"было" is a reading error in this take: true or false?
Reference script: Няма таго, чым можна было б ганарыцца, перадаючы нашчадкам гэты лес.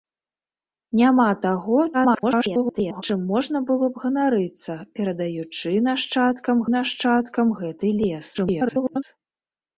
false